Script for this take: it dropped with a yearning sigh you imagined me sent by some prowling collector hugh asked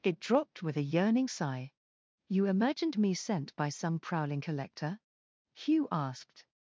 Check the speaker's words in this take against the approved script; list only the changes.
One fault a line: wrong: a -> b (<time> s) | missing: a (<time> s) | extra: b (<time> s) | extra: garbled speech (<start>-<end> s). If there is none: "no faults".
no faults